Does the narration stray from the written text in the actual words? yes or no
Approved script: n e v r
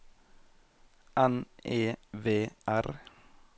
no